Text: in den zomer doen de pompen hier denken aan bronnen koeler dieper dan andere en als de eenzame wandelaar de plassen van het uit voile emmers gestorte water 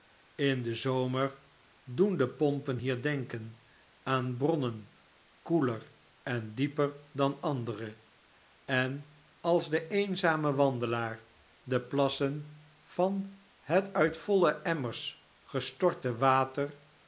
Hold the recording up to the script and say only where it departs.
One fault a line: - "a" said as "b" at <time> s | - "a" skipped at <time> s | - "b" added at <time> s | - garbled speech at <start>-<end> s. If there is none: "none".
- "en" added at 6.2 s